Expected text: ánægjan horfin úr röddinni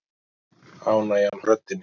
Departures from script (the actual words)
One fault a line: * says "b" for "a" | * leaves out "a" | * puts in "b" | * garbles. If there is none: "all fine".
* leaves out "horfin"